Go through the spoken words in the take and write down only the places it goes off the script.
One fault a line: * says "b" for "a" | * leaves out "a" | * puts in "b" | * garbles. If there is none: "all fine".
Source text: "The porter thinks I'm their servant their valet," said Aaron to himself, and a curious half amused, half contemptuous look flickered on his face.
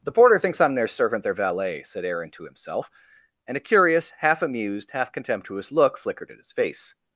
* says "at" for "on"